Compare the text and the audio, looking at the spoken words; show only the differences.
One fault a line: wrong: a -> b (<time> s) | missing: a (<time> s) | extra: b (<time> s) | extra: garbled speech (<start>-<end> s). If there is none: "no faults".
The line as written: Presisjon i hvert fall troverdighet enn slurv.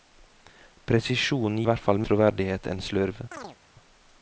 no faults